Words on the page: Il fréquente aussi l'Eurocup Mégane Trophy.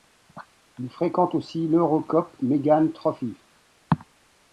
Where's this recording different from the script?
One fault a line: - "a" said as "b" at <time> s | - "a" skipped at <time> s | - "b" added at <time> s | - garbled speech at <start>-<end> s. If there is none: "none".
none